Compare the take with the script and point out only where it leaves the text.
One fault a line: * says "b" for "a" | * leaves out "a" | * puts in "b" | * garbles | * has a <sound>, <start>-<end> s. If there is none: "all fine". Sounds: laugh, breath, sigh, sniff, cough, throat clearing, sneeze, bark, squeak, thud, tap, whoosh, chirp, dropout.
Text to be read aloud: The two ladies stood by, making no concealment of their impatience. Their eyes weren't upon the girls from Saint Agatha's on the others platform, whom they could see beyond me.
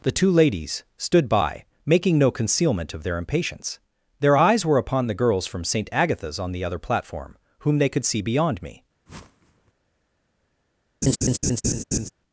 * says "were" for "weren't"
* says "other" for "others"
* has a whoosh, 9.1-9.7 s
* has a laugh, 11.0-12.1 s